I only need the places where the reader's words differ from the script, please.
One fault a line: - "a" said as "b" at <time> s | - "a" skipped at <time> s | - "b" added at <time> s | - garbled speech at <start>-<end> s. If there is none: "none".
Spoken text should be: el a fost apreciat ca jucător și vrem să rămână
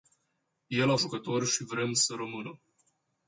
- "fost apreciat ca" skipped at 0.9 s